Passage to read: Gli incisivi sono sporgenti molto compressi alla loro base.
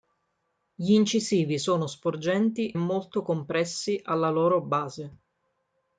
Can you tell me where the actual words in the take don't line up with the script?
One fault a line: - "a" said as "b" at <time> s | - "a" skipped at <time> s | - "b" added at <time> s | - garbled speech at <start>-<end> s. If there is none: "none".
none